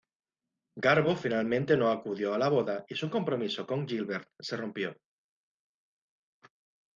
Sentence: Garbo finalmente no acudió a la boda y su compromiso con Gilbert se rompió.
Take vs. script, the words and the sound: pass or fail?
pass